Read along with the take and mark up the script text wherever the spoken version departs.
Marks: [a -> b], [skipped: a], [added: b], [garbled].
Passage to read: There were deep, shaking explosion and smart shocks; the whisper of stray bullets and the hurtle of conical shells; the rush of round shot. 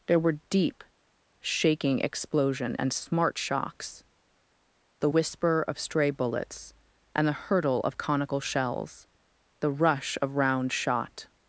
There were deep, shaking explosion and smart shocks; the whisper of stray bullets and the hurtle of conical shells; the rush of round shot.